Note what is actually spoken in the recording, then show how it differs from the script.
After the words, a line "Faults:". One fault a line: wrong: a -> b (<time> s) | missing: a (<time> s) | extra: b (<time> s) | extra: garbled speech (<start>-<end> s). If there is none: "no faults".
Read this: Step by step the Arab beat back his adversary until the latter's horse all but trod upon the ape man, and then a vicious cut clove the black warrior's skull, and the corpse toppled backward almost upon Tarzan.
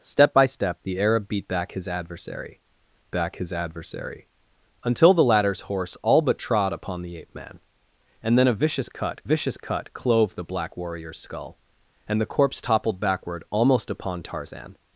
Step by step the Arab beat back his adversary back his adversary until the latter's horse all but trod upon the ape man, and then a vicious cut vicious cut clove the black warrior's skull, and the corpse toppled backward almost upon Tarzan.
Faults:
extra: back his adversary (3.1 s)
extra: vicious cut (9.2 s)